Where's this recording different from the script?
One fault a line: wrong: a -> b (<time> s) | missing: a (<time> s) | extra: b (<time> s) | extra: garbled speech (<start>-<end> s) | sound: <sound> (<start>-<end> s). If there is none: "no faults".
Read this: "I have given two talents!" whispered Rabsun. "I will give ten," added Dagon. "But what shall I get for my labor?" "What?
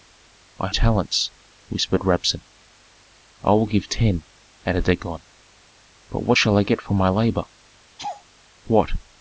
missing: have given two (0.7 s)
sound: laugh (8.0-8.2 s)